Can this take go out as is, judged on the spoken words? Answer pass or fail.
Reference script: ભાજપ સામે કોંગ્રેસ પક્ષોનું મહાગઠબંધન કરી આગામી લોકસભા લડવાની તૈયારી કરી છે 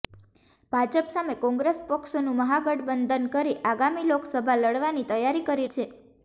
pass